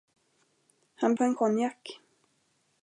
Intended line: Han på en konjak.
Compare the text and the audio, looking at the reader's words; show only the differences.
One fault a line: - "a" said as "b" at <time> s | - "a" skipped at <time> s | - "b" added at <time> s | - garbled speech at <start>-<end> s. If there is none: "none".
none